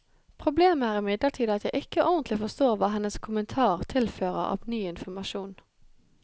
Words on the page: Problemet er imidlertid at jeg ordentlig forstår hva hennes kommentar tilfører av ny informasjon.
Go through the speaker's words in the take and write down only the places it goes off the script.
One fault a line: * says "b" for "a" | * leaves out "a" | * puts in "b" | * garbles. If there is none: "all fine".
* puts in "ikke"